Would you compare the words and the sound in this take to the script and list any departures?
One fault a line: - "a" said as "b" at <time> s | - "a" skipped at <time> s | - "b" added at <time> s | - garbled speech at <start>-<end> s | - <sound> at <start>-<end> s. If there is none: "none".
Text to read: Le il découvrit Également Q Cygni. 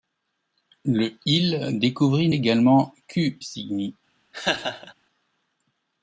- laugh at 4.3-4.9 s